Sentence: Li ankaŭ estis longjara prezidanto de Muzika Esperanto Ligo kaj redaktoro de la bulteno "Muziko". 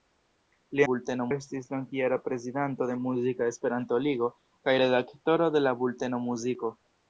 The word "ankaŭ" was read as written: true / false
false